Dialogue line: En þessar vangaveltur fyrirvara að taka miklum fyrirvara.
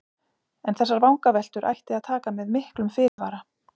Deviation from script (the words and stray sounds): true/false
true